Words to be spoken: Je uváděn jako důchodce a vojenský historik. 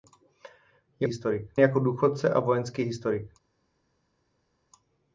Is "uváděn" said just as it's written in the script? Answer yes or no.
no